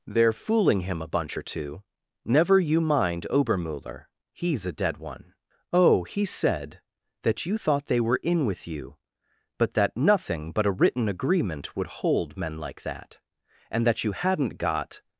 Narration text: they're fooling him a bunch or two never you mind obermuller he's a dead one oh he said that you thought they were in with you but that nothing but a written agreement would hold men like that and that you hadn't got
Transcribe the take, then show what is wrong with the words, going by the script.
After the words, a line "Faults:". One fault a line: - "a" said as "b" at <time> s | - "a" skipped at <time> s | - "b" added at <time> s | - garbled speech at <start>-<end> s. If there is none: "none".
they're fooling him a bunch or two never you mind obermuller he's a dead one oh he said that you thought they were in with you but that nothing but a written agreement would hold men like that and that you hadn't got
Faults:
none